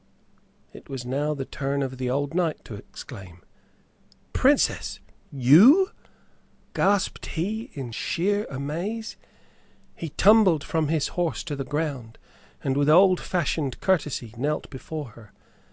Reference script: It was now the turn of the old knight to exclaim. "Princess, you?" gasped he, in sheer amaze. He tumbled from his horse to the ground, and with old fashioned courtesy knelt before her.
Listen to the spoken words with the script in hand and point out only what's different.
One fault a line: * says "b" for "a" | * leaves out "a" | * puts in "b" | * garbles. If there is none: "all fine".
all fine